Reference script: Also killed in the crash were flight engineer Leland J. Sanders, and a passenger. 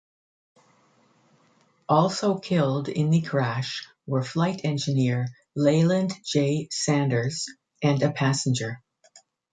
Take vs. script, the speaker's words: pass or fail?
pass